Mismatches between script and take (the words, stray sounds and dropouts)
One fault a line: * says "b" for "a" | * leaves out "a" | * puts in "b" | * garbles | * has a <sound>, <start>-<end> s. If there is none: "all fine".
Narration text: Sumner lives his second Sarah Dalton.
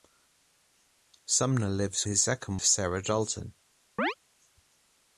* has a chirp, 4.0-4.1 s